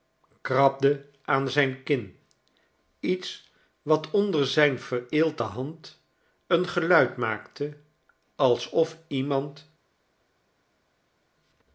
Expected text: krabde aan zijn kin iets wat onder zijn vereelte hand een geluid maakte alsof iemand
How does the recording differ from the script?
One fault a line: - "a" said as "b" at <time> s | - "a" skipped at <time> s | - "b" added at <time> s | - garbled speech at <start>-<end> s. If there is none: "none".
none